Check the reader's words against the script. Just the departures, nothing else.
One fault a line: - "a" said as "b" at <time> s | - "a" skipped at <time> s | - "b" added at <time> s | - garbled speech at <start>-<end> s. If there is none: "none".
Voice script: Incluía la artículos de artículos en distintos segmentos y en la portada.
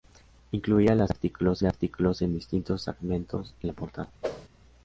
none